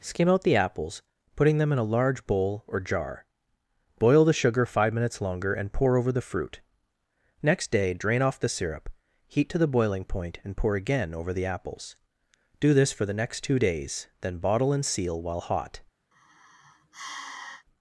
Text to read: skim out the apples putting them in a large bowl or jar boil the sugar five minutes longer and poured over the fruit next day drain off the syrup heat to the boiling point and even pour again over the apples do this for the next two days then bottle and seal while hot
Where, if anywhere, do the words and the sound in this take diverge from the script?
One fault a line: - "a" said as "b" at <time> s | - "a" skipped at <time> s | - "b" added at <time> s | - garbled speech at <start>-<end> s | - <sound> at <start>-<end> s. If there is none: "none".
- "poured" said as "pour" at 5.7 s
- "even" skipped at 10.6 s
- sigh at 16.1-17.6 s